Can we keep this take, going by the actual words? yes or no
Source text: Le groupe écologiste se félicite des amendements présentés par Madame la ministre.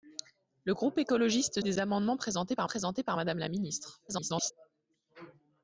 no